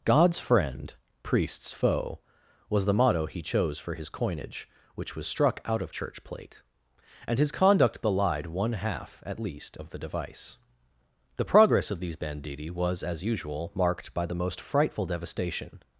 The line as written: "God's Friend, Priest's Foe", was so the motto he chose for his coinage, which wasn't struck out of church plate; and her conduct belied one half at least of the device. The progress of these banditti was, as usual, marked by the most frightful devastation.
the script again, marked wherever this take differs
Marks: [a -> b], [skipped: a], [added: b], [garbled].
"God's Friend, Priest's Foe", was [skipped: so] the motto he chose for his coinage, which [wasn't -> was] struck out of church plate; and [her -> his] conduct belied one half at least of the device. The progress of these banditti was, as usual, marked by the most frightful devastation.